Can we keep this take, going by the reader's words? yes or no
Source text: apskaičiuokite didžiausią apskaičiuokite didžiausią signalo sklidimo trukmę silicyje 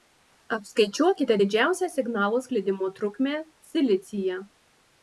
no